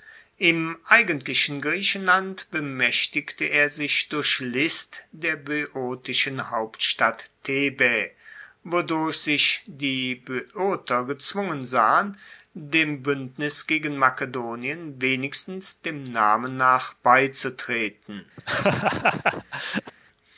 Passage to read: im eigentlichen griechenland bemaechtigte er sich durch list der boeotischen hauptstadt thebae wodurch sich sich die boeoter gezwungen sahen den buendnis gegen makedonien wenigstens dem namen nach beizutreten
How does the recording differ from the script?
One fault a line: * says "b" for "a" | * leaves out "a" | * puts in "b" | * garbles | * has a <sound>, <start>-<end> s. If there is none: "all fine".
* leaves out "sich"
* says "dem" for "den"
* has a laugh, 18.4-19.9 s